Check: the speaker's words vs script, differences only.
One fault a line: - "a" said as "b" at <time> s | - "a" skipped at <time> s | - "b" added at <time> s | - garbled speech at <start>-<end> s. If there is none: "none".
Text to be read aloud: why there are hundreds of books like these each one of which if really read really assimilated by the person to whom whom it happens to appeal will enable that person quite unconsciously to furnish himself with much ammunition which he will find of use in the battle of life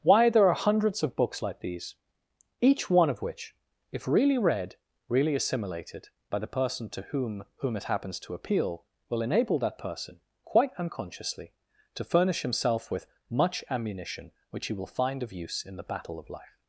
none